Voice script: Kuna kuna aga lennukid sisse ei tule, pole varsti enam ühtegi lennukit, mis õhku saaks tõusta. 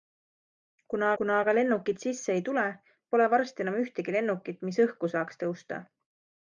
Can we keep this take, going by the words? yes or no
yes